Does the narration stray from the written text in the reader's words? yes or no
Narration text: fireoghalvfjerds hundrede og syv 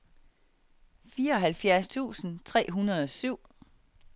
yes